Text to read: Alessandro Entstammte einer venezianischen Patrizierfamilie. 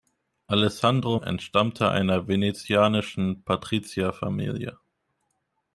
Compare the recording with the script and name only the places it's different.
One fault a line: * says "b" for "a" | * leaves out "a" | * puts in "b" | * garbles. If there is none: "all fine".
all fine